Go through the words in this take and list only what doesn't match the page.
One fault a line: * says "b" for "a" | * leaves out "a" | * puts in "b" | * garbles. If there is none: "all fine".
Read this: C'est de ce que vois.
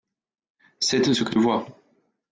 all fine